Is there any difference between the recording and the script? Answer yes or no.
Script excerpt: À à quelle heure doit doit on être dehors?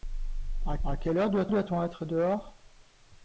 no